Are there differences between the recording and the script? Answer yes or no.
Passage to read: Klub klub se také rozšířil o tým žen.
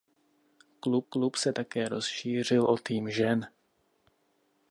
no